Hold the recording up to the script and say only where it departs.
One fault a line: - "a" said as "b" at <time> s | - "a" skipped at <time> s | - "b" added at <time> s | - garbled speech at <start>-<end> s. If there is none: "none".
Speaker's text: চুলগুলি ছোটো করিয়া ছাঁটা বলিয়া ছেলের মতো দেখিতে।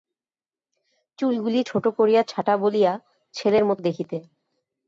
none